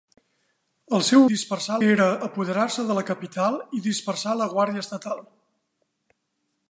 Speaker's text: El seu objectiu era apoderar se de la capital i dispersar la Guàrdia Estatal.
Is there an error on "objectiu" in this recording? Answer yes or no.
yes